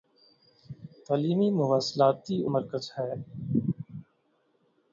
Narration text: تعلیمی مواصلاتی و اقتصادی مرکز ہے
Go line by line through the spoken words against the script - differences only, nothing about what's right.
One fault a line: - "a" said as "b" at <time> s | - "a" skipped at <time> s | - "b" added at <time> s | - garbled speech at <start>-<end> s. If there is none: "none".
- "اقتصادی" skipped at 2.5 s